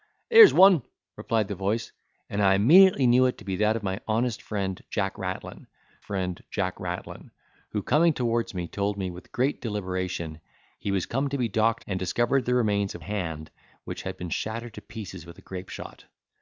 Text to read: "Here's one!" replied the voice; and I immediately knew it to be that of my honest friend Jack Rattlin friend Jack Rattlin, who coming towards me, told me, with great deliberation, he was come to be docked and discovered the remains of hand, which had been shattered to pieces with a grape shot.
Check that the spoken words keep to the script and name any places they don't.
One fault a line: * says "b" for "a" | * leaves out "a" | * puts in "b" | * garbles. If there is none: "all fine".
all fine